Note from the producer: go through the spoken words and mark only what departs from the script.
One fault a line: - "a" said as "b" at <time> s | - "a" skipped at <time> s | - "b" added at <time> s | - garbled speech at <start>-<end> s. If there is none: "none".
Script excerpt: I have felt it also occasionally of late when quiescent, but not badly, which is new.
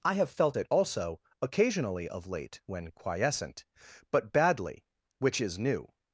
- "not" skipped at 4.3 s